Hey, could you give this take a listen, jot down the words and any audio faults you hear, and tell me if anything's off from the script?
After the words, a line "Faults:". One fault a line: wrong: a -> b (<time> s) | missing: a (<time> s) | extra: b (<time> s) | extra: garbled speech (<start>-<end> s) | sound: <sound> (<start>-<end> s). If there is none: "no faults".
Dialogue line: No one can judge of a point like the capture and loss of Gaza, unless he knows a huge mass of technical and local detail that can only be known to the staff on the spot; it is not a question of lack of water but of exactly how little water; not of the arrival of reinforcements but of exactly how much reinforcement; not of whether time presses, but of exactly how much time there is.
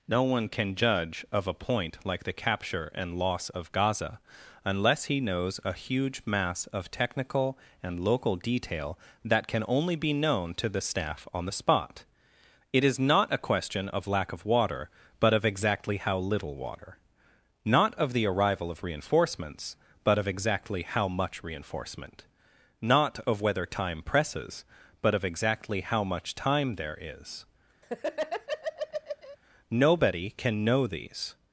No one can judge of a point like the capture and loss of Gaza, unless he knows a huge mass of technical and local detail that can only be known to the staff on the spot; it is not a question of lack of water but of exactly how little water; not of the arrival of reinforcements but of exactly how much reinforcement; not of whether time presses, but of exactly how much time there is. Nobody can know these
Faults:
sound: laugh (27.8-29.4 s)
extra: Nobody can know these (29.7 s)